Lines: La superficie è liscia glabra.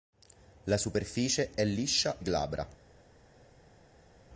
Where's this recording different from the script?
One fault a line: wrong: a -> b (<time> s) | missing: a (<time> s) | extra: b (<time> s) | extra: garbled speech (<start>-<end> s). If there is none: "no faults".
no faults